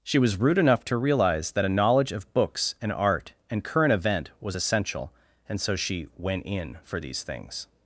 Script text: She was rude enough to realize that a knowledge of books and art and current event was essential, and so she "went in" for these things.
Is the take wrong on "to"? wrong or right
right